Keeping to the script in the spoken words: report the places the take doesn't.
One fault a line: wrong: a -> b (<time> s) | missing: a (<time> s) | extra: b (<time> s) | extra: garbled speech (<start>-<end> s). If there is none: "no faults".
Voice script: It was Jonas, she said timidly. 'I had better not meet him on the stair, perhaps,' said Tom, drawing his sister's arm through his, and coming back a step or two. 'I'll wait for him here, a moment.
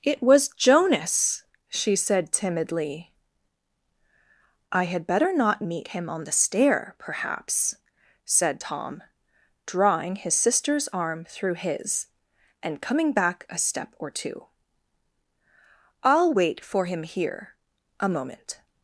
no faults